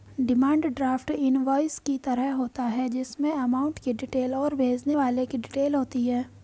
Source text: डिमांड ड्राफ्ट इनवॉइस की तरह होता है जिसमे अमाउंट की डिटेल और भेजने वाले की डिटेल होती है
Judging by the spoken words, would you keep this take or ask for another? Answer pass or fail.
pass